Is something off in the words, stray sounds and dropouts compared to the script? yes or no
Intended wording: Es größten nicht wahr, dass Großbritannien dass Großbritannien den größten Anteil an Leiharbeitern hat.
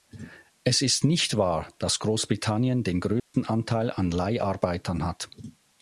yes